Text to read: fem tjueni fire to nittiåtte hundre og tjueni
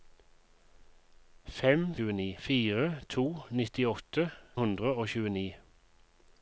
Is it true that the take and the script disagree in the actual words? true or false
false